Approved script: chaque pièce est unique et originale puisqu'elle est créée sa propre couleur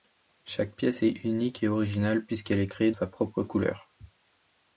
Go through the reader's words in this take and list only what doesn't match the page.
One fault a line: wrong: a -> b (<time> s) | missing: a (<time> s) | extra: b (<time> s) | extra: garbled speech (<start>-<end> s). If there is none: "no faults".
no faults